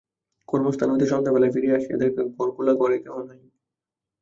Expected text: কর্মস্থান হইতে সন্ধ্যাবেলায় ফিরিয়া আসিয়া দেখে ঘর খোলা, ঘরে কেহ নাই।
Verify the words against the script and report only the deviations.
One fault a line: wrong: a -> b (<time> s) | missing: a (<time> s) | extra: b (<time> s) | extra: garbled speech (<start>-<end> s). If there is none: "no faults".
no faults